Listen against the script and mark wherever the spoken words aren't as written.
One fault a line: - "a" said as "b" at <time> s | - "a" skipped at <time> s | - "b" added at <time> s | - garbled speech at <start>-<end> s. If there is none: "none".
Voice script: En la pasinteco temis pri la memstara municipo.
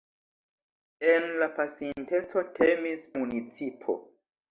- "pri la memstara" skipped at 3.1 s